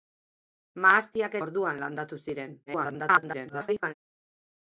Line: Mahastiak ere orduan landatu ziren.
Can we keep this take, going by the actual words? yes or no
no